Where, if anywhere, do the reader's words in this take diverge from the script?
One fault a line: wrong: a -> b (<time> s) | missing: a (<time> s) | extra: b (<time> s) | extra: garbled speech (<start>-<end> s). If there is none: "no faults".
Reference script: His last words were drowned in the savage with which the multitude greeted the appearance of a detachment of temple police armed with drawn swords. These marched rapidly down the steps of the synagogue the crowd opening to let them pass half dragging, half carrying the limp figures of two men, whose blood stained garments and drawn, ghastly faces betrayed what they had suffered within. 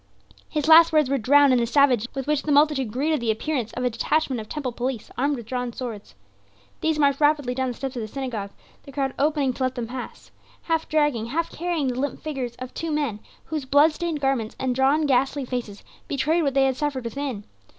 no faults